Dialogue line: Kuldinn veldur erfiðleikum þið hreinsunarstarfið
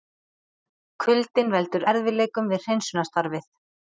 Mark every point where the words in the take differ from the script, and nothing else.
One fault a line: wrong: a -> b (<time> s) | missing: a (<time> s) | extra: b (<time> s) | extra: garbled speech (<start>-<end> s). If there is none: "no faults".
wrong: þið -> við (2.5 s)